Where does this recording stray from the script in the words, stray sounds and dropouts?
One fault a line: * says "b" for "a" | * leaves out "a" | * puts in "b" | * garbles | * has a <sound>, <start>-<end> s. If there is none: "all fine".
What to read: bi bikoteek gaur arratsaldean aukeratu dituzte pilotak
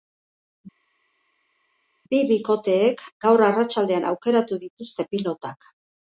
all fine